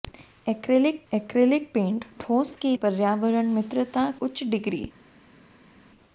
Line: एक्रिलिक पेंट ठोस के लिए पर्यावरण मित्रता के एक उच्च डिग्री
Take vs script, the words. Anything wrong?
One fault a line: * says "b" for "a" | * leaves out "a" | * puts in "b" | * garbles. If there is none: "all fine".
* puts in "एक्रिलिक"
* leaves out "लिए"
* leaves out "के एक"